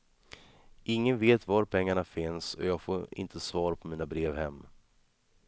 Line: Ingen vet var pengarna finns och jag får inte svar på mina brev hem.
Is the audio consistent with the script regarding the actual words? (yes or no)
yes